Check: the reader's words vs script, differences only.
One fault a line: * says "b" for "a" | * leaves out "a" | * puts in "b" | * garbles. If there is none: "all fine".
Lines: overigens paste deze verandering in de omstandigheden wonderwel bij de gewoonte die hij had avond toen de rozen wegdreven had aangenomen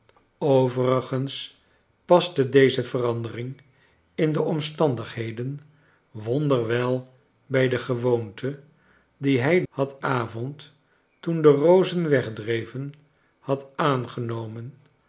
all fine